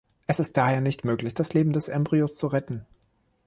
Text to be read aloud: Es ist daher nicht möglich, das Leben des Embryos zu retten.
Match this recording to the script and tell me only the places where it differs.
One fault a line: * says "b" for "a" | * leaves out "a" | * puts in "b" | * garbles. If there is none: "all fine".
all fine